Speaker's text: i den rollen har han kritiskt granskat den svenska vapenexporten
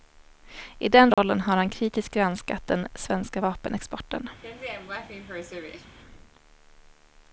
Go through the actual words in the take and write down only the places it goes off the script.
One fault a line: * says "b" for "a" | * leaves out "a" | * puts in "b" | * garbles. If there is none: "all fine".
all fine